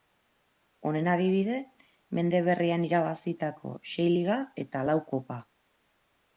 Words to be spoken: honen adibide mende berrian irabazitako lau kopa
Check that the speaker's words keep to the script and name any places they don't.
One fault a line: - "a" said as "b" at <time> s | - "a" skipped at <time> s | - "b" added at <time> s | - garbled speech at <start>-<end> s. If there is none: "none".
- "sei liga eta" added at 3.9 s